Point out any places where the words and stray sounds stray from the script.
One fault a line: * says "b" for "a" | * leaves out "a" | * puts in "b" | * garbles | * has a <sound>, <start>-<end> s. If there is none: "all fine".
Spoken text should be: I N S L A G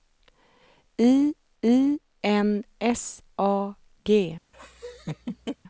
* puts in "I"
* leaves out "L"
* has a laugh, 4.5-5.6 s